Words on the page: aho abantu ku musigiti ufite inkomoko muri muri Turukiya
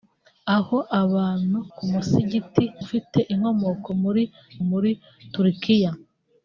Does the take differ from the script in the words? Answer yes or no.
no